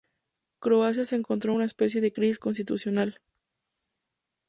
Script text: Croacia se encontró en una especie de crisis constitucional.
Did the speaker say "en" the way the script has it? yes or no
yes